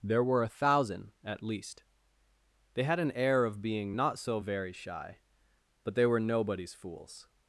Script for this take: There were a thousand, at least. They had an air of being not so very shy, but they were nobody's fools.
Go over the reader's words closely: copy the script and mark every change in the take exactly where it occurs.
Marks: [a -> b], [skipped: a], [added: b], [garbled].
There were a thousand, at least. They had an air of being not so very shy, but they were nobody's fools.